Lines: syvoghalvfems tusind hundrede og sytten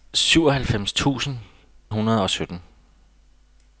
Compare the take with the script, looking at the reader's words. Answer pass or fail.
pass